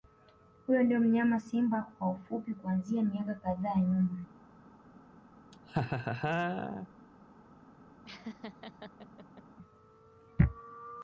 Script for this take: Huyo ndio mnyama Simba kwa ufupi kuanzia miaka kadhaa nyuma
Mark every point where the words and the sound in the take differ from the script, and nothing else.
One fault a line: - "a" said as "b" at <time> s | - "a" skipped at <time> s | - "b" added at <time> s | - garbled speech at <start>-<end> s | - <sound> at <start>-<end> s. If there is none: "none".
- laugh at 5.5-6.9 s
- laugh at 8.0-9.4 s